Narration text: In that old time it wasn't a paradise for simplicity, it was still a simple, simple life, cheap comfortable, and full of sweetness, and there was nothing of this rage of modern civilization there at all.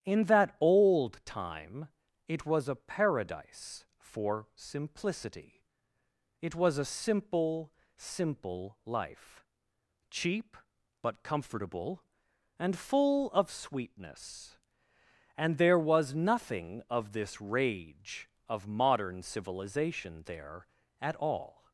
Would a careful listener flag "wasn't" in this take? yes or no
yes